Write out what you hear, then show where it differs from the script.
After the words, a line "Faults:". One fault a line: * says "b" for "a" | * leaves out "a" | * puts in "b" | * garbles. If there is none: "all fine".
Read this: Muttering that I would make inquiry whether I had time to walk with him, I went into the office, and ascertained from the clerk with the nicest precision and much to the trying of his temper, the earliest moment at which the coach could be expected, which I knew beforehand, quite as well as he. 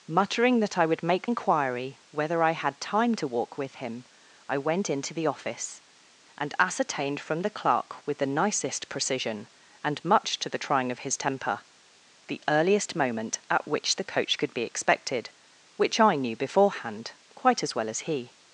Muttering that I would make inquiry whether I had time to walk with him, I went into the office, and ascertained from the clerk with the nicest precision and much to the trying of his temper, the earliest moment at which the coach could be expected, which I knew beforehand, quite as well as he.
Faults:
all fine